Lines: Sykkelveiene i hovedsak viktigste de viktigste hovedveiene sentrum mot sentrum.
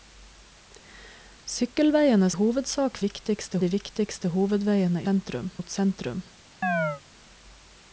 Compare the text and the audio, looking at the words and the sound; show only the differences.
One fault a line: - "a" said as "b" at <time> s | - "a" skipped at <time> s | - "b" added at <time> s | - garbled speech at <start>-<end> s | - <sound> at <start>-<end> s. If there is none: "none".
- chirp at 6.6-7.0 s